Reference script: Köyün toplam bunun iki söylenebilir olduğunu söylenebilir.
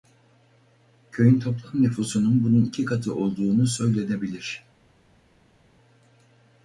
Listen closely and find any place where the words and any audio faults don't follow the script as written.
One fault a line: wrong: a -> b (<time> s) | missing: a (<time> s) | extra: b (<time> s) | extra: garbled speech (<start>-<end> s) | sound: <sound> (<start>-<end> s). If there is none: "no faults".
extra: nüfusunun (1.8 s)
wrong: söylenebilir -> katı (2.8 s)